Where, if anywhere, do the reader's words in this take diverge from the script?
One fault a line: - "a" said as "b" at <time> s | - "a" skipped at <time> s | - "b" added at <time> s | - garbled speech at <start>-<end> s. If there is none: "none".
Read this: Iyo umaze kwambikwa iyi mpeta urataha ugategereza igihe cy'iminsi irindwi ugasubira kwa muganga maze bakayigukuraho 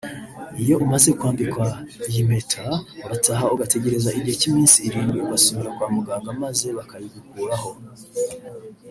none